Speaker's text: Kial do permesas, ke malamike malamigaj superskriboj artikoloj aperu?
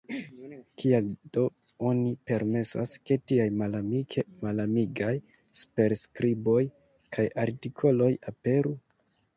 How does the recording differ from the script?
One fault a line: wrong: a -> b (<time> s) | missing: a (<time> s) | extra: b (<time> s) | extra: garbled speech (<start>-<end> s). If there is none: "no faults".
extra: oni (1.9 s)
extra: tiaj (3.3 s)
extra: kaj (7.2 s)